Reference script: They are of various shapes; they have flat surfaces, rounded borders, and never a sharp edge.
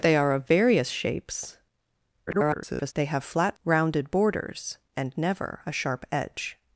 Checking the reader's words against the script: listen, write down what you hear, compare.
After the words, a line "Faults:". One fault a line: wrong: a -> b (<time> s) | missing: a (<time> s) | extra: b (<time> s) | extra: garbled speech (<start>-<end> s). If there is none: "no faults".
They are of various shapes; [garbled] they have flat rounded borders, and never a sharp edge.
Faults:
extra: garbled speech (2.3-2.9 s)
missing: surfaces (3.6 s)